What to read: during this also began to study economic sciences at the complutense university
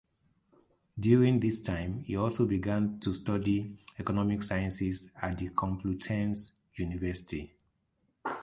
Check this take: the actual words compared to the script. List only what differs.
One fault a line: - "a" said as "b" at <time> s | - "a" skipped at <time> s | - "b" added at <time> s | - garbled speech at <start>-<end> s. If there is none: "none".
- "time he" added at 1.6 s